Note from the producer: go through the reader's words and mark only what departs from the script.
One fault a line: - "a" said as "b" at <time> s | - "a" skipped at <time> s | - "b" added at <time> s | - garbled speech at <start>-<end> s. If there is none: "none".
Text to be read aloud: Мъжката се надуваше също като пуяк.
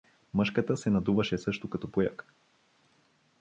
none